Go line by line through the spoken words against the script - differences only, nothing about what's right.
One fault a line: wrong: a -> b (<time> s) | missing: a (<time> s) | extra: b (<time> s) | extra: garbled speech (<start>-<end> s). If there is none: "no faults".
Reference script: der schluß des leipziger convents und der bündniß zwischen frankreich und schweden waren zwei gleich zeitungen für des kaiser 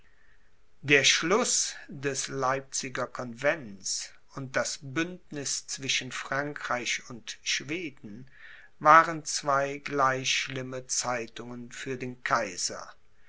wrong: der -> das (4.6 s)
extra: schlimme (10.3 s)
wrong: des -> den (12.0 s)